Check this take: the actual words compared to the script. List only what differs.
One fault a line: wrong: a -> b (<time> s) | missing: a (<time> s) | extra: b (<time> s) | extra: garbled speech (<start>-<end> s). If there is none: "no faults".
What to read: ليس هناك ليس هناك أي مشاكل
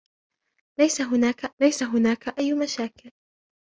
no faults